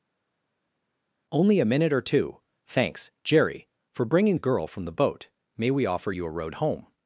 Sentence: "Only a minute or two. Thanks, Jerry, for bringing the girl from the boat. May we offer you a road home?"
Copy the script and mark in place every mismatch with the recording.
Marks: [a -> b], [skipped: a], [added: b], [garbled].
"Only a minute or two. Thanks, Jerry, for bringing the girl from the boat. May we offer you a road home?"